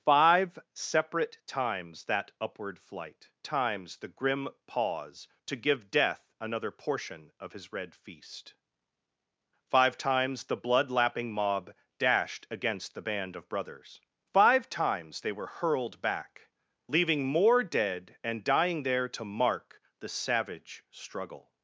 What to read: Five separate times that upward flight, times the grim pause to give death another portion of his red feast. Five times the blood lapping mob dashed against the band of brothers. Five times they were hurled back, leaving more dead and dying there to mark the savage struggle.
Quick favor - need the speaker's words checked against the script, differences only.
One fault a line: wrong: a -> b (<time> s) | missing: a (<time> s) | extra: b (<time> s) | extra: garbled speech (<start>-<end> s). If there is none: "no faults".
no faults